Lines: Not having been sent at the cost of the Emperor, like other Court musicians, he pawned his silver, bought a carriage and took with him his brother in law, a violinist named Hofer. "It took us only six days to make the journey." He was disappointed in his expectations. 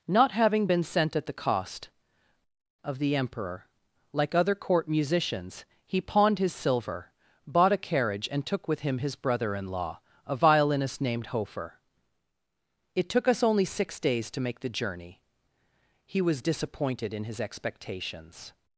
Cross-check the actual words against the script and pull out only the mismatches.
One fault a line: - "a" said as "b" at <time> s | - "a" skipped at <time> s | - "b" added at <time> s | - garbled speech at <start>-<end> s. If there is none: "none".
none